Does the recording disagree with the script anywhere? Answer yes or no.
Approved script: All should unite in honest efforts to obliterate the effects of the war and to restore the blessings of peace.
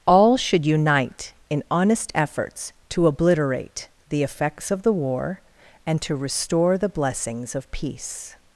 no